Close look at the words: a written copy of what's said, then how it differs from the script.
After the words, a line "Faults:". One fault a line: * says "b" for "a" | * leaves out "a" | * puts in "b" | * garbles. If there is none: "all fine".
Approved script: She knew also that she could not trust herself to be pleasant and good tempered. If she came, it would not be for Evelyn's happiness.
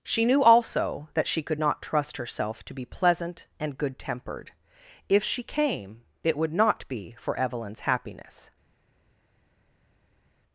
She knew also that she could not trust herself to be pleasant and good tempered. If she came, it would not be for Evelyn's happiness.
Faults:
all fine